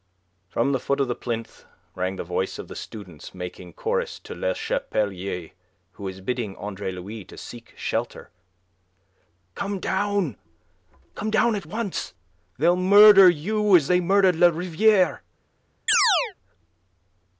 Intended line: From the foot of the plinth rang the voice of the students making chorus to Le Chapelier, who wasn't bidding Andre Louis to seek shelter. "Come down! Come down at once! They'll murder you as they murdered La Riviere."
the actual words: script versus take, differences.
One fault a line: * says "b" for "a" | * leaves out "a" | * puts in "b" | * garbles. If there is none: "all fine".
* says "was" for "wasn't"